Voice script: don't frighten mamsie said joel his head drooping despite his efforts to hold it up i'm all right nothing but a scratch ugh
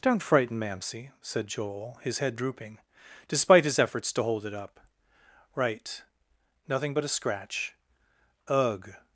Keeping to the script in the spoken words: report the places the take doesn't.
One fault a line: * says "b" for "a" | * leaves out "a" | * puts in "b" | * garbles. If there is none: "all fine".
* leaves out "i'm all"